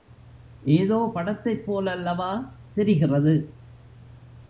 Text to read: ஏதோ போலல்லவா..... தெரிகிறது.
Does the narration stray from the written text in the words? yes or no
yes